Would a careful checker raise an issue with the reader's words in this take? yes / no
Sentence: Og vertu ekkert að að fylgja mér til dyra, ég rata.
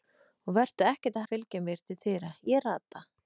no